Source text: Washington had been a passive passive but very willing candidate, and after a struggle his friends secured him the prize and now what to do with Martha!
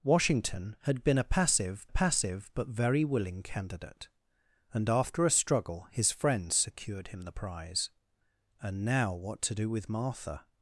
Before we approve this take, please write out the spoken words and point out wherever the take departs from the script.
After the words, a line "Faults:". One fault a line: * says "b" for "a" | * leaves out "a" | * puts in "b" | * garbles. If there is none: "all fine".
Washington had been a passive passive but very willing candidate, and after a struggle his friends secured him the prize and now what to do with Martha!
Faults:
all fine